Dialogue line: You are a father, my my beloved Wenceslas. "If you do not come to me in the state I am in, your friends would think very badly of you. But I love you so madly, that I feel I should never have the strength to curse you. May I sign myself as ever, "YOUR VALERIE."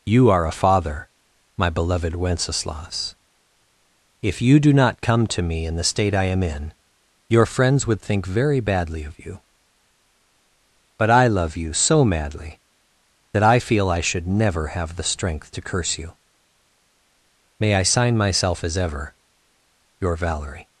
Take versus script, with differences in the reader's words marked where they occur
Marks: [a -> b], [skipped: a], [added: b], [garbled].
You are a father, my [skipped: my] beloved Wenceslas. "If you do not come to me in the state I am in, your friends would think very badly of you. But I love you so madly, that I feel I should never have the strength to curse you. May I sign myself as ever, "YOUR VALERIE."